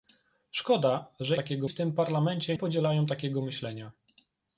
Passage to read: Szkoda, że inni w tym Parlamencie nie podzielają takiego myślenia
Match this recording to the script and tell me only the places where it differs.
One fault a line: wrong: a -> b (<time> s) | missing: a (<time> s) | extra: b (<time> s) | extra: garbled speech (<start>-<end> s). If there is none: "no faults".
wrong: inni -> takiego (1.3 s)
missing: nie (2.6 s)